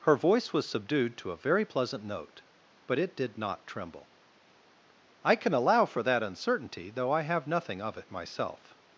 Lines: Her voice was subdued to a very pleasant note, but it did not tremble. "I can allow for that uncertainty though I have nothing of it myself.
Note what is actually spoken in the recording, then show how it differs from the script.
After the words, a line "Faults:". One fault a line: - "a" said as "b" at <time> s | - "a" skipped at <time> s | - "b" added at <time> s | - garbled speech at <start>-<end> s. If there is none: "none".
Her voice was subdued to a very pleasant note, but it did not tremble. "I can allow for that uncertainty though I have nothing of it myself.
Faults:
none